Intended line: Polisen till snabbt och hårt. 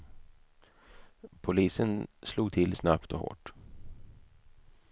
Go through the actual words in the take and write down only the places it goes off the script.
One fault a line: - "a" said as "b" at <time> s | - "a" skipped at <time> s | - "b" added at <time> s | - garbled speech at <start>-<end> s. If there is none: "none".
- "slog" added at 2.2 s